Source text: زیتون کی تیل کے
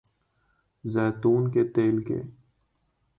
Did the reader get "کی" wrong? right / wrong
wrong